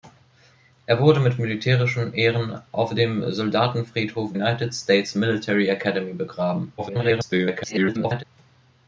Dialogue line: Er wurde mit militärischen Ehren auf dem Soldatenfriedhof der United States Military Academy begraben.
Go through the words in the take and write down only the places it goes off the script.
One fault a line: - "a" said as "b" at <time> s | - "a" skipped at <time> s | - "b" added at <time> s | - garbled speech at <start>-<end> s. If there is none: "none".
- "der" skipped at 4.3 s
- garbled speech at 6.8-8.2 s